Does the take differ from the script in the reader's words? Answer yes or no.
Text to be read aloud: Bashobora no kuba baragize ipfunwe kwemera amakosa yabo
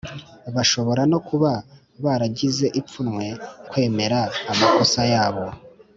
no